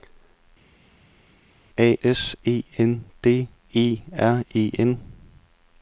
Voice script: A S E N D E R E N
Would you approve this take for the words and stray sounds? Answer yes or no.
yes